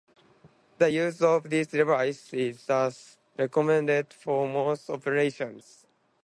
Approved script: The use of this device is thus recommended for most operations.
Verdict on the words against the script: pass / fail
pass